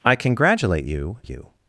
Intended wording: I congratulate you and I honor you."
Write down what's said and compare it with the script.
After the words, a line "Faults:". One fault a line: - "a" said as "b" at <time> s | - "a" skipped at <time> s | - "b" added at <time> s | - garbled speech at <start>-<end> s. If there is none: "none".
I congratulate you you."
Faults:
- "and I honor" skipped at 1.2 s